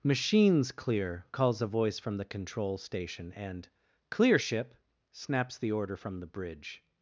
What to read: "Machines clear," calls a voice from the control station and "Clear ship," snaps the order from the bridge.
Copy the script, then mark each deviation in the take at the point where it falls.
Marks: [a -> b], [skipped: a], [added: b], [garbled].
"Machines clear," calls a voice from the control station and "Clear ship," snaps the order from the bridge.